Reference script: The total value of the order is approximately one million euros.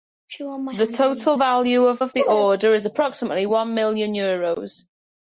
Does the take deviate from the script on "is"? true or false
false